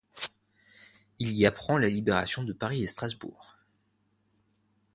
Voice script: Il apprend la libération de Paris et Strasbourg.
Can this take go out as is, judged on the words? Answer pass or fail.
fail